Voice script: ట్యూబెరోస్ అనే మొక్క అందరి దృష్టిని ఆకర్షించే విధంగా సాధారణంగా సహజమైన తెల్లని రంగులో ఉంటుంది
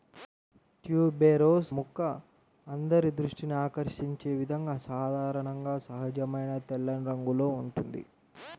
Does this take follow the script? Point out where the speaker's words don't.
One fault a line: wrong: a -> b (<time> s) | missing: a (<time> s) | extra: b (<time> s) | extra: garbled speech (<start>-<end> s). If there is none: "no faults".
missing: అనే (1.7 s)